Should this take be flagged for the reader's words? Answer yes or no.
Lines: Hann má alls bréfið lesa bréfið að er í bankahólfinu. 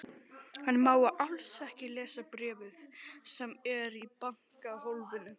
yes